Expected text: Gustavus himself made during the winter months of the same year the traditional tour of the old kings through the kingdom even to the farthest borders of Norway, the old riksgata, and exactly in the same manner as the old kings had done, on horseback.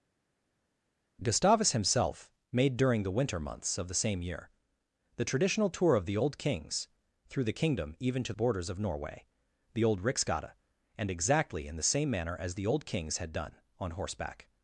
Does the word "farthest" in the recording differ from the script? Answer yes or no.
yes